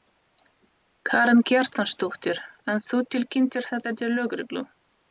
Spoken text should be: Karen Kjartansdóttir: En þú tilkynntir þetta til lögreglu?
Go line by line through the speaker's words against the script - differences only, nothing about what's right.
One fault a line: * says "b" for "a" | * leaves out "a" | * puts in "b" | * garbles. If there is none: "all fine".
all fine